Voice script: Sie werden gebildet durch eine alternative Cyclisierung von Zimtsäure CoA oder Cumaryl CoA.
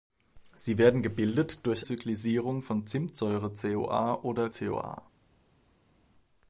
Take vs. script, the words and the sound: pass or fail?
fail